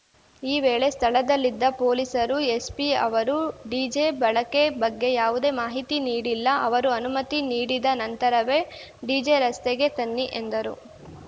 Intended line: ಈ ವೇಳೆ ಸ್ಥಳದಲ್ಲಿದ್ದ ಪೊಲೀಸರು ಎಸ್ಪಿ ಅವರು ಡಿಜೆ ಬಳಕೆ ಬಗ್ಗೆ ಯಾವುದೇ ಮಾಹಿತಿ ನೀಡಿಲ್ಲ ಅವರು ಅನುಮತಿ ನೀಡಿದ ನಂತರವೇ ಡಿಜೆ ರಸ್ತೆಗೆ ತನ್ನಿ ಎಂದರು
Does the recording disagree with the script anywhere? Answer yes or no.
no